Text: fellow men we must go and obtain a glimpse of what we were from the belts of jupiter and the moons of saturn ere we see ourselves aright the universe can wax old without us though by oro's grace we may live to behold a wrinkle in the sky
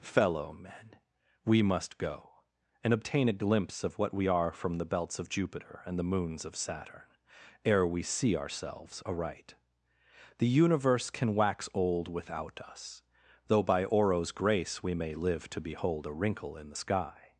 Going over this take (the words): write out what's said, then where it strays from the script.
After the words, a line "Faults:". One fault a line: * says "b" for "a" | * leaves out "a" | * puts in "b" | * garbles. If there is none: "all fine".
fellow men we must go and obtain a glimpse of what we are from the belts of jupiter and the moons of saturn ere we see ourselves aright the universe can wax old without us though by oro's grace we may live to behold a wrinkle in the sky
Faults:
* says "are" for "were"